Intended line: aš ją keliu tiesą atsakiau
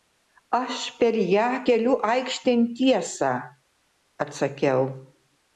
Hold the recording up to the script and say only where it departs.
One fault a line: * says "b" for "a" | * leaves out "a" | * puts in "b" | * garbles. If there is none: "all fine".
* puts in "per"
* puts in "aikštėn"